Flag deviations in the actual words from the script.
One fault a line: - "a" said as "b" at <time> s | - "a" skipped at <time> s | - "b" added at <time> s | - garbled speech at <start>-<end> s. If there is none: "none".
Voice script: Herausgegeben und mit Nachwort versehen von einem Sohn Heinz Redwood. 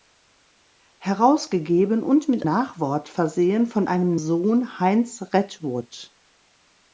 none